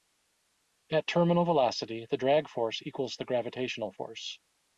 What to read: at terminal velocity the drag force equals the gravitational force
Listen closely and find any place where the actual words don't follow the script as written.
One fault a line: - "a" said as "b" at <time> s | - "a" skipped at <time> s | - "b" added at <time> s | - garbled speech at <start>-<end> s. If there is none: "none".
none